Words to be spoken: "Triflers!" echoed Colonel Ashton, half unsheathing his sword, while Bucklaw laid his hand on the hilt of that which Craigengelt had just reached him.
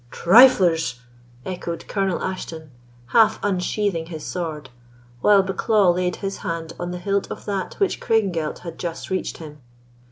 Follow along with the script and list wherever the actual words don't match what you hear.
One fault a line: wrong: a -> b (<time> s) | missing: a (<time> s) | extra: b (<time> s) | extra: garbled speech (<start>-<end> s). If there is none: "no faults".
no faults